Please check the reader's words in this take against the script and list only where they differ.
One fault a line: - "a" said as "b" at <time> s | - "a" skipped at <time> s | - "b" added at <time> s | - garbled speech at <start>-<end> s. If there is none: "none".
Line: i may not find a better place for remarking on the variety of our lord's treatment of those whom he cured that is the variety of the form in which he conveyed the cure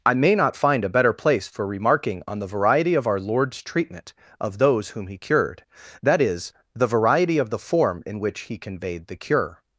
none